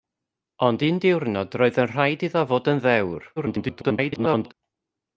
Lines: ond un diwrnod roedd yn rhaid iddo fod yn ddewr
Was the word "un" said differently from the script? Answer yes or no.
no